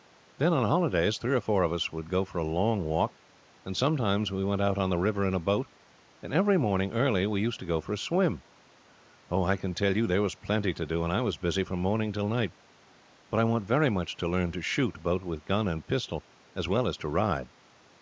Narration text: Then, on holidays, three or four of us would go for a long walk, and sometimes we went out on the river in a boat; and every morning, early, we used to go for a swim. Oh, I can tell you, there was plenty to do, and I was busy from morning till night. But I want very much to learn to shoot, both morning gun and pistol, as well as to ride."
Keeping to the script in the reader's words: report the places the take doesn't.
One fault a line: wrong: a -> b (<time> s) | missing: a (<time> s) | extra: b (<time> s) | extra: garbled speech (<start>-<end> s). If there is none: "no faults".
wrong: morning -> with (15.2 s)